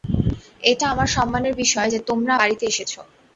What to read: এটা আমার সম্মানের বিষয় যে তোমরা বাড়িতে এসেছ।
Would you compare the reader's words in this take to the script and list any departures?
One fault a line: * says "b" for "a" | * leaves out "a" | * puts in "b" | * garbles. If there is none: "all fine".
all fine